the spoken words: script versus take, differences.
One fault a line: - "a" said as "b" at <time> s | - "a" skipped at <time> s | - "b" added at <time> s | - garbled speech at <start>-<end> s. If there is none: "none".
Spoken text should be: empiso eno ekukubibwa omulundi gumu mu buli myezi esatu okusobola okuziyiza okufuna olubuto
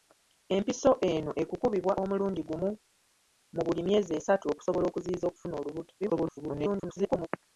- garbled speech at 6.0-7.3 s